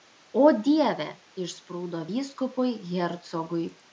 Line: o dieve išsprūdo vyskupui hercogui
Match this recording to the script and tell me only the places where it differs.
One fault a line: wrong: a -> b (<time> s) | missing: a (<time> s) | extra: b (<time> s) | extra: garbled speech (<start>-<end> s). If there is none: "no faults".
no faults